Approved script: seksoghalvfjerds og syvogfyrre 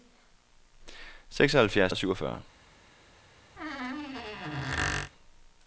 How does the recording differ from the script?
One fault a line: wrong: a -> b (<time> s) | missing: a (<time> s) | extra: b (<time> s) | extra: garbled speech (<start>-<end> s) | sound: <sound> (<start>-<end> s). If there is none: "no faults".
sound: squeak (3.6-5.1 s)